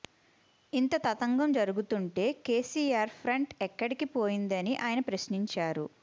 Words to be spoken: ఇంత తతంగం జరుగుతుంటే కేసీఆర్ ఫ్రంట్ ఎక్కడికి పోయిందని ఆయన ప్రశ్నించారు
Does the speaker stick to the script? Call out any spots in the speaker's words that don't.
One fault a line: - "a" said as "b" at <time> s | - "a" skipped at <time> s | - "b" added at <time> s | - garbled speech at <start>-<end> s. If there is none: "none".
none